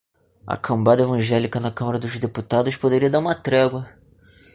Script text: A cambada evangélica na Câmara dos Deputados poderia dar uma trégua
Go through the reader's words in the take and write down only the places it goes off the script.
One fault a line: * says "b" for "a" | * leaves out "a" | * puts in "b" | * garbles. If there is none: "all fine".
all fine